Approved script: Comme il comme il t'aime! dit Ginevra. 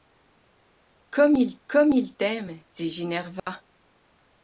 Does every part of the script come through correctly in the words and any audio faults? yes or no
no